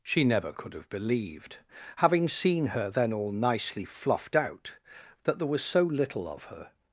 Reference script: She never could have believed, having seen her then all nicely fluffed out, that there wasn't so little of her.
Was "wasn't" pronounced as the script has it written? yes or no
no